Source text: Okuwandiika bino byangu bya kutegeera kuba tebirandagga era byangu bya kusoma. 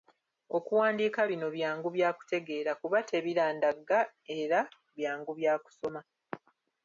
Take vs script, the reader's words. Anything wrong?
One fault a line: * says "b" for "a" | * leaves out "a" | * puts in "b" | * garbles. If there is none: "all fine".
all fine